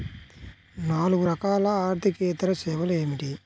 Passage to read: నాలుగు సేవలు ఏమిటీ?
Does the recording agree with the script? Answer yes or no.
no